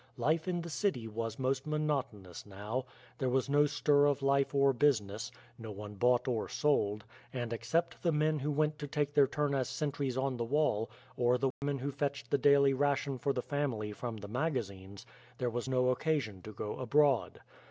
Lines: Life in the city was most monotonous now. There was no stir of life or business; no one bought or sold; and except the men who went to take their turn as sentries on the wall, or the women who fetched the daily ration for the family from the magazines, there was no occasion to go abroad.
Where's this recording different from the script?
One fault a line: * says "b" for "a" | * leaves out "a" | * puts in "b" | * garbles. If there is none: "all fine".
all fine